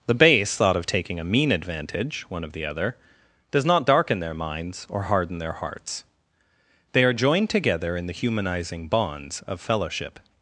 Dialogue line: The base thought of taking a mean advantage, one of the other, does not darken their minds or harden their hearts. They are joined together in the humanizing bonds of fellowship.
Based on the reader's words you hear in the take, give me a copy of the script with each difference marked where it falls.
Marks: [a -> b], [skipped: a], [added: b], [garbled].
The base thought of taking a mean advantage, one of the other, does not darken their minds or harden their hearts. They are joined together in the humanizing bonds of fellowship.